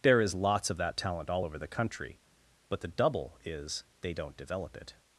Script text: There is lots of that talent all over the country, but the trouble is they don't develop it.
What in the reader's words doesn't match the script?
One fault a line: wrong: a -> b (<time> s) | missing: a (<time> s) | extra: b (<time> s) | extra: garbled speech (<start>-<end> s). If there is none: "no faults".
wrong: trouble -> double (2.9 s)